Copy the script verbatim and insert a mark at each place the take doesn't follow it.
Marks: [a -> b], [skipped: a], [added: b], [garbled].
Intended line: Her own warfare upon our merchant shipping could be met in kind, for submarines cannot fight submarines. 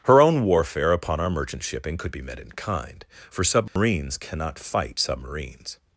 Her own warfare upon our merchant shipping could be met in kind, for submarines cannot fight submarines.